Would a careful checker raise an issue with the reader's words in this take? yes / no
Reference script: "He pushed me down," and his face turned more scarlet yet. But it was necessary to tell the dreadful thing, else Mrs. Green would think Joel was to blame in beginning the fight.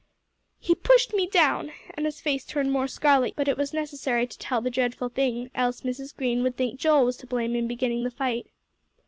yes